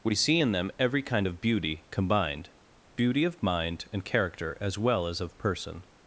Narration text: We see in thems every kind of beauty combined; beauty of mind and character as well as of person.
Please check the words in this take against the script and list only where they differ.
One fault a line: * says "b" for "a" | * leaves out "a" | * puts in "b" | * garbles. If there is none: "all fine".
* says "them" for "thems"